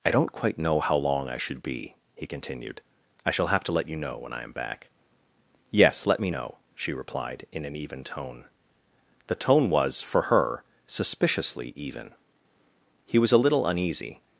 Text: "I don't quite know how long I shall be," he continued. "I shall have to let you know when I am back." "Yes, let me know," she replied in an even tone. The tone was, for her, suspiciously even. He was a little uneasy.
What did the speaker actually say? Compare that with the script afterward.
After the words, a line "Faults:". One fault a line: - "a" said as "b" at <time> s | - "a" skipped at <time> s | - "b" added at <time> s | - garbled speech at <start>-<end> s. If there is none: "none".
"I don't quite know how long I should be," he continued. "I shall have to let you know when I am back." "Yes, let me know," she replied in an even tone. The tone was, for her, suspiciously even. He was a little uneasy.
Faults:
- "shall" said as "should" at 1.4 s